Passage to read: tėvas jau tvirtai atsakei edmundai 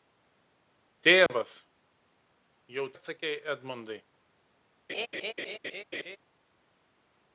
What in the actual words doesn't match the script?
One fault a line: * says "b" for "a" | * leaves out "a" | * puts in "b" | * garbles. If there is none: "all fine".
* leaves out "tvirtai"